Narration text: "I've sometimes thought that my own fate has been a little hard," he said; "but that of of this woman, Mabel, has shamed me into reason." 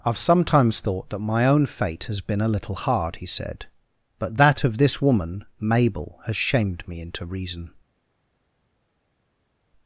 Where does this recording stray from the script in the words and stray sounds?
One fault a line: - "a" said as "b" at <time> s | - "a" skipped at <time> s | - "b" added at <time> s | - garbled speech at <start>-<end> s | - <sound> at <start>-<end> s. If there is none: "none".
- "of" skipped at 4.8 s